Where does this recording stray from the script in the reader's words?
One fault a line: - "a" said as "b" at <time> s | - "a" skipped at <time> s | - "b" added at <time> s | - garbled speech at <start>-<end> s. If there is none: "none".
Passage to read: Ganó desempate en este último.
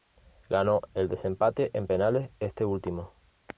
- "el" added at 0.9 s
- "penales" added at 1.9 s